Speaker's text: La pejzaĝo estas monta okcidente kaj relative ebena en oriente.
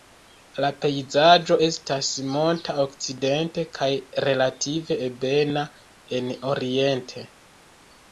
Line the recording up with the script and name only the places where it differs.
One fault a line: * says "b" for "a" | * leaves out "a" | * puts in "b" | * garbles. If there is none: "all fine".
all fine